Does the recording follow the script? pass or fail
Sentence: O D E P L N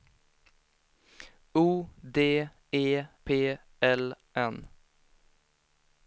pass